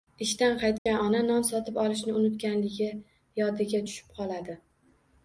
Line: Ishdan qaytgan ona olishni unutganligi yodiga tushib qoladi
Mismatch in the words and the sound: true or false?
true